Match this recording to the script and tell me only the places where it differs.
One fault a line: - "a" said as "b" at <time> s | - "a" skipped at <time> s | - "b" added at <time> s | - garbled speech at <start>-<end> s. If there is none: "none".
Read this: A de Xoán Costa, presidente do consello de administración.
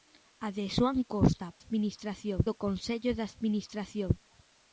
- "presidente" said as "administración" at 1.6 s